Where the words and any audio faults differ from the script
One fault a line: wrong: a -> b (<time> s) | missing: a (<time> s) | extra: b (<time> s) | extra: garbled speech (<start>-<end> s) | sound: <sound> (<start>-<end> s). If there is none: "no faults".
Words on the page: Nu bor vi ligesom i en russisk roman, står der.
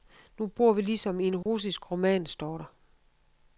sound: dropout (1.4-1.5 s)